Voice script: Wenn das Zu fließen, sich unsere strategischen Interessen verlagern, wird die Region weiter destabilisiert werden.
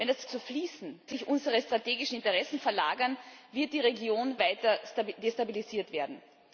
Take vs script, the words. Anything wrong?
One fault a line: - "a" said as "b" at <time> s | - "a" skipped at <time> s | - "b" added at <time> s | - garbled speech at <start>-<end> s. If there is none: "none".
none